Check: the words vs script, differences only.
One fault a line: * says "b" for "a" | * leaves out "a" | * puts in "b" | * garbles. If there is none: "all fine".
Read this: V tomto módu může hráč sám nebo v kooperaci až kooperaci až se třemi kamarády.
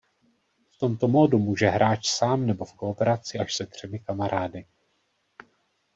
* leaves out "kooperaci až"